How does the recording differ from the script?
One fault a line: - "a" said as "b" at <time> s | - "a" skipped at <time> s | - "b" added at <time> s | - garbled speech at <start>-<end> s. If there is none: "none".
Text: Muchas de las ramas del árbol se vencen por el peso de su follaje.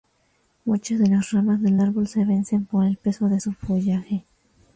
none